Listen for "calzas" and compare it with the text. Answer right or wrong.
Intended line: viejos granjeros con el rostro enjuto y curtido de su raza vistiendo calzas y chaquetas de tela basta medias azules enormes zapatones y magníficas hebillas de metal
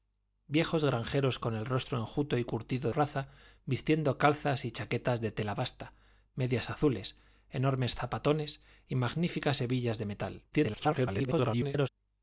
right